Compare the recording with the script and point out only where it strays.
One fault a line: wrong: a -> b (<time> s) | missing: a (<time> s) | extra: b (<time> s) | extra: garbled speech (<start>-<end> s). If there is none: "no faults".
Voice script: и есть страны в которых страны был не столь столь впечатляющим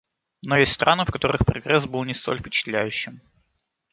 wrong: и -> но (0.4 s)
wrong: страны -> прогресс (1.4 s)
missing: столь (2.4 s)